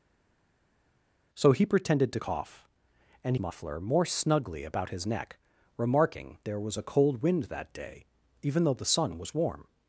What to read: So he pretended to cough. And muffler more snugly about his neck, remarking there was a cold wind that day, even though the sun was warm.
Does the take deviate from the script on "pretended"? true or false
false